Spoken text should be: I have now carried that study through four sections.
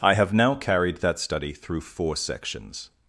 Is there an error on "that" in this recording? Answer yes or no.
no